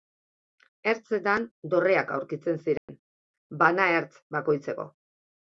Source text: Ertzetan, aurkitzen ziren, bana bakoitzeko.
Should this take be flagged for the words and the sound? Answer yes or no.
yes